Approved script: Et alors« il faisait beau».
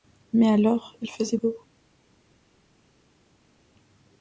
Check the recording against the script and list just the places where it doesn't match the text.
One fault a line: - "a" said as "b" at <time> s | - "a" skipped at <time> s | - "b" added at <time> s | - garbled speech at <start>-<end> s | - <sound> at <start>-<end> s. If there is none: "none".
- "Et" said as "Mais" at 0.3 s